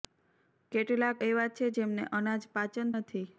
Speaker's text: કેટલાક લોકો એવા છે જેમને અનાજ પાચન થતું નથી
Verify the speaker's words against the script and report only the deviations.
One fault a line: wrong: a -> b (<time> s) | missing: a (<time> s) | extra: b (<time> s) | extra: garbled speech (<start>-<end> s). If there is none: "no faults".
missing: લોકો (1.2 s)
missing: થતું (2.9 s)